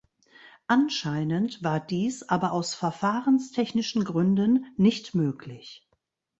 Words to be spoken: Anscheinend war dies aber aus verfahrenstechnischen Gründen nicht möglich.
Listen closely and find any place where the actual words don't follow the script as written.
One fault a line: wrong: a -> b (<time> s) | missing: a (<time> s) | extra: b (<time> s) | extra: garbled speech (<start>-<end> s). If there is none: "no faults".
no faults